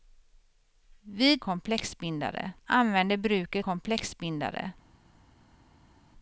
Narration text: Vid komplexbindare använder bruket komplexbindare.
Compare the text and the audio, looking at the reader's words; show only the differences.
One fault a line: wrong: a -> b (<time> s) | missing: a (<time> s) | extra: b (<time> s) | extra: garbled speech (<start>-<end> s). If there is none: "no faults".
no faults